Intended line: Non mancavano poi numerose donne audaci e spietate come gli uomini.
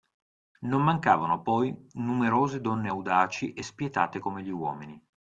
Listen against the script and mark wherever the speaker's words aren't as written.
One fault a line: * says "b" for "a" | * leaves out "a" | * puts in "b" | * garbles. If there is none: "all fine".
all fine